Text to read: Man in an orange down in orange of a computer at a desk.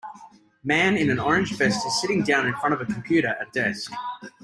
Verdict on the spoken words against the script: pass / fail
fail